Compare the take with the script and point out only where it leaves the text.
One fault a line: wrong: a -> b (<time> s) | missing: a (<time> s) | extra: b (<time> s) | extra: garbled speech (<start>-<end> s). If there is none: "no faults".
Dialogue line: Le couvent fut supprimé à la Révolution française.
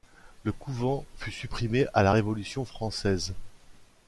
no faults